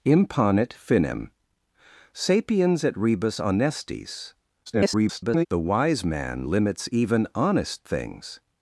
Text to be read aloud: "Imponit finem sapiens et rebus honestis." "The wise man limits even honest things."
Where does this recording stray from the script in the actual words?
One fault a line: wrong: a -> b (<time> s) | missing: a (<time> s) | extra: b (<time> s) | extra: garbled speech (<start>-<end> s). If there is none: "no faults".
extra: garbled speech (4.7-5.5 s)